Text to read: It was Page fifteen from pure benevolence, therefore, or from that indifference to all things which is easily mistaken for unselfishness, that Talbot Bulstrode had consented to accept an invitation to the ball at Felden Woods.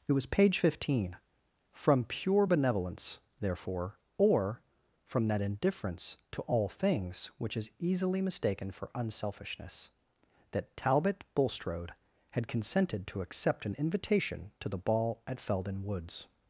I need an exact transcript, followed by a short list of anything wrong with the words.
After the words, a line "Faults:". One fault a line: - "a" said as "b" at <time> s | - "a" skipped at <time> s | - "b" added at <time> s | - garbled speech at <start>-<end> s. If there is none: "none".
It was Page fifteen from pure benevolence, therefore, or from that indifference to all things which is easily mistaken for unselfishness, that Talbot Bulstrode had consented to accept an invitation to the ball at Felden Woods.
Faults:
none